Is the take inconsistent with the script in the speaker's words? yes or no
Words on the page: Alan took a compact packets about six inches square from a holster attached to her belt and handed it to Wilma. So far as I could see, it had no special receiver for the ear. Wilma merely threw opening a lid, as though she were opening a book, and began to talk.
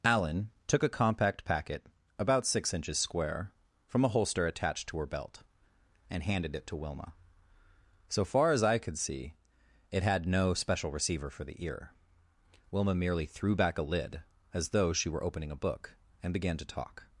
yes